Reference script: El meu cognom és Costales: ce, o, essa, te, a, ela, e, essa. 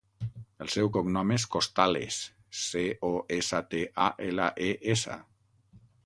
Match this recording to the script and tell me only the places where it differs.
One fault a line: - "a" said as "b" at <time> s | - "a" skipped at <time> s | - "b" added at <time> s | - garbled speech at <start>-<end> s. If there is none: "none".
- "meu" said as "seu" at 0.8 s